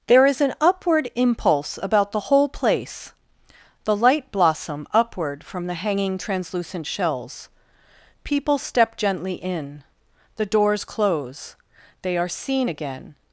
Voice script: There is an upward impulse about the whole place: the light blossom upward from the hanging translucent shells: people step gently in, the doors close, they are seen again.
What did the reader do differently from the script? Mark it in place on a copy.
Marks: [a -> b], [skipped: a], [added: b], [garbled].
There is an upward impulse about the whole place: the light blossom upward from the hanging translucent shells: people step gently in, the doors close, they are seen again.